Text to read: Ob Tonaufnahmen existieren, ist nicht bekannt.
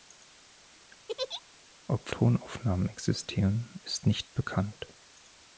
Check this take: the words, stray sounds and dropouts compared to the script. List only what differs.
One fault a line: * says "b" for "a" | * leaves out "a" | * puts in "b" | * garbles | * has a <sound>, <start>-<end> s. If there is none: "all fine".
* has a laugh, 1.1-1.4 s